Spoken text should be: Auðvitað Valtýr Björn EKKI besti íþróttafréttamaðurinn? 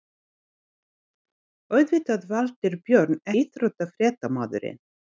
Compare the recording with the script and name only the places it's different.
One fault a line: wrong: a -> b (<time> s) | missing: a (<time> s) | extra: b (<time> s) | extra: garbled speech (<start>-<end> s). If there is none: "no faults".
missing: EKKI besti (3.2 s)